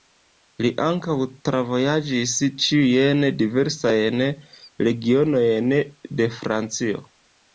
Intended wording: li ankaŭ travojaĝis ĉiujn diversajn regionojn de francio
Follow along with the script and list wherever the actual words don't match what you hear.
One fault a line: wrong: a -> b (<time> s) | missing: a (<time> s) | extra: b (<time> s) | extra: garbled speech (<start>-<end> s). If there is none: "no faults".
no faults